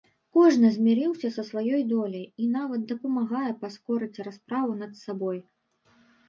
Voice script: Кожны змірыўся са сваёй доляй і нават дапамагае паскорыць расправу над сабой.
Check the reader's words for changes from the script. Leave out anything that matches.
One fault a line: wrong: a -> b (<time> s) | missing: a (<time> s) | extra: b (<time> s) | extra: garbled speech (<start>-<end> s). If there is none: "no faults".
no faults